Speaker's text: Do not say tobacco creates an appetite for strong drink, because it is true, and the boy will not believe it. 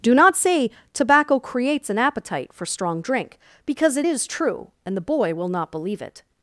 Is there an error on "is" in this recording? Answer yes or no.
no